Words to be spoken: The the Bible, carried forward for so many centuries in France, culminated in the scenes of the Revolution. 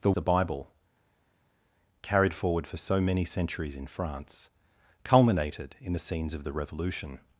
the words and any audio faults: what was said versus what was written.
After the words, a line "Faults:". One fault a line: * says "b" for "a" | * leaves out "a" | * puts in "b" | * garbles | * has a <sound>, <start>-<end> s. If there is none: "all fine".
The the Bible, carried forward for so many centuries in France, culminated in the scenes of the Revolution.
Faults:
all fine